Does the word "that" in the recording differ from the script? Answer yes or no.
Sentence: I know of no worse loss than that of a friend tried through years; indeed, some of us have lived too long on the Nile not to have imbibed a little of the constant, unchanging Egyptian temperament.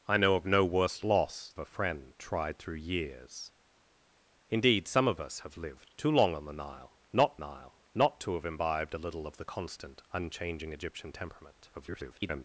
yes